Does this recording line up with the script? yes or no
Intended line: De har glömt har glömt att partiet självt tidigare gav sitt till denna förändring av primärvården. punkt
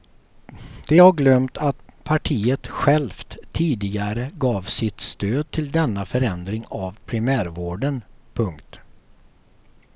no